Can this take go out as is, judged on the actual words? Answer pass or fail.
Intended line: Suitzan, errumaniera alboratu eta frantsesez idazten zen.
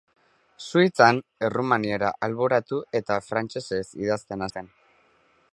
pass